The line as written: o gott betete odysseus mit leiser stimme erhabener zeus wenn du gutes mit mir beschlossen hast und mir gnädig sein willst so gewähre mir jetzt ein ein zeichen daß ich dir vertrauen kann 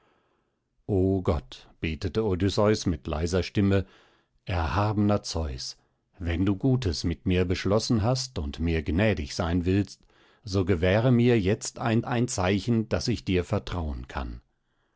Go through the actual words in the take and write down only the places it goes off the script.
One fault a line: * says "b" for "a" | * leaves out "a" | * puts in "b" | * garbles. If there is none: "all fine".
all fine